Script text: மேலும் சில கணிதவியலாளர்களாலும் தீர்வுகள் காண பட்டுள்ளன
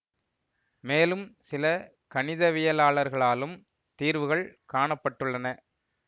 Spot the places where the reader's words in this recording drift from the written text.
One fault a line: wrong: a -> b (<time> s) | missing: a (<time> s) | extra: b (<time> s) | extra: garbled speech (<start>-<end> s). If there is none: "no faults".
no faults